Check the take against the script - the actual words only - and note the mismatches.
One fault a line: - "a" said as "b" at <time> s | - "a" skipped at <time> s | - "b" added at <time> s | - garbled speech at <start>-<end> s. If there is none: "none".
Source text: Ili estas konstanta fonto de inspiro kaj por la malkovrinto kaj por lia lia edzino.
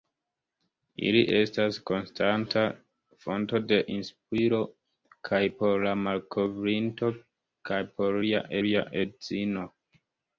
none